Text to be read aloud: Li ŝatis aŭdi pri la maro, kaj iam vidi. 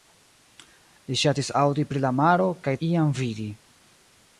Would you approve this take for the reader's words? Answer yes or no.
yes